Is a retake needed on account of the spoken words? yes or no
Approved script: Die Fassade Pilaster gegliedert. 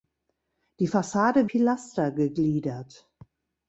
no